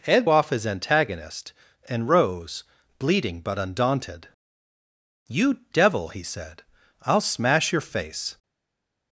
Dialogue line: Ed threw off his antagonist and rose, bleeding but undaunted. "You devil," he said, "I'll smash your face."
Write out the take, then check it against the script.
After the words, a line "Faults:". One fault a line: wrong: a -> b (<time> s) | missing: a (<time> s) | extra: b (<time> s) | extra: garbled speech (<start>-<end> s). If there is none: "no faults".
Ed off his antagonist and rose, bleeding but undaunted. "You devil," he said, "I'll smash your face."
Faults:
missing: threw (0.3 s)